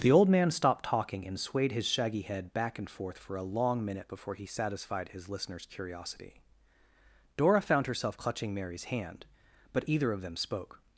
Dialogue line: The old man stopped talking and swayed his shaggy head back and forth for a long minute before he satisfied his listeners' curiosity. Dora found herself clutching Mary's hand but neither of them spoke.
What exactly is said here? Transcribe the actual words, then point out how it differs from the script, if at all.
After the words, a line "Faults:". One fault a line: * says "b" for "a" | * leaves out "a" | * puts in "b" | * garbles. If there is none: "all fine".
The old man stopped talking and swayed his shaggy head back and forth for a long minute before he satisfied his listeners' curiosity. Dora found herself clutching Mary's hand but either of them spoke.
Faults:
* says "either" for "neither"